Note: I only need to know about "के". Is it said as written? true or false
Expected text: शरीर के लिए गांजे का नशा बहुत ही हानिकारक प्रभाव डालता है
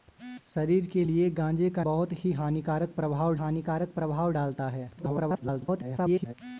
true